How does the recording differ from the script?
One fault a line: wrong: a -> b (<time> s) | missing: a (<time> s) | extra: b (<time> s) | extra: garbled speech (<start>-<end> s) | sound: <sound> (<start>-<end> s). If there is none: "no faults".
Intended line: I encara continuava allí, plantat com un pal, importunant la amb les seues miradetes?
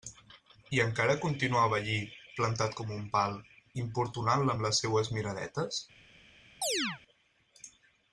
sound: chirp (6.6-7.0 s)